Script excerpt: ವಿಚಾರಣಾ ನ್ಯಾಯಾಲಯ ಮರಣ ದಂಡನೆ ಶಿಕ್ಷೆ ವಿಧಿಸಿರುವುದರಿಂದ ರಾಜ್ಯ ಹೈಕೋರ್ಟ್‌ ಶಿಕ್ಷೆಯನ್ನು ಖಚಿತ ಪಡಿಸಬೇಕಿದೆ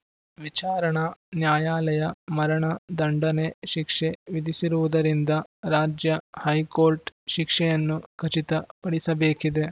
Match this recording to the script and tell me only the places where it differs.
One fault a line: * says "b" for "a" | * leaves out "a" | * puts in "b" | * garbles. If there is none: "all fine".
all fine